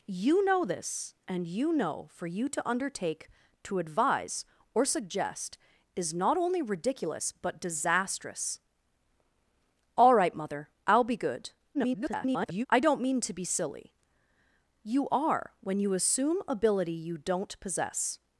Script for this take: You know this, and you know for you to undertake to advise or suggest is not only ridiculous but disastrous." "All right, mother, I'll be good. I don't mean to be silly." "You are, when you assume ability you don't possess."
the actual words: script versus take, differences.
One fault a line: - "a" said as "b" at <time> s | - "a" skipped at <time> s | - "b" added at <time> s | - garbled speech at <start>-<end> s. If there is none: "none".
- garbled speech at 11.7-12.7 s